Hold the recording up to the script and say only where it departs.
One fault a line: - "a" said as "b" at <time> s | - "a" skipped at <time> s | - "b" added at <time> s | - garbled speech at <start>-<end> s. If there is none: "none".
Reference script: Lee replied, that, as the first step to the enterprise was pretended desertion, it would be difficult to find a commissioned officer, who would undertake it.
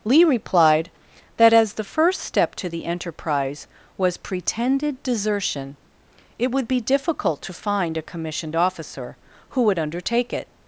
none